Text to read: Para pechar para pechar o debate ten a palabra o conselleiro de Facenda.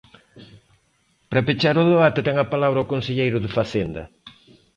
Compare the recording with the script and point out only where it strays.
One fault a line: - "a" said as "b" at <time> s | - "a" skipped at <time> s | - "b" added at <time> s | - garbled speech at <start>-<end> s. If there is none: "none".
- "para pechar" skipped at 1.8 s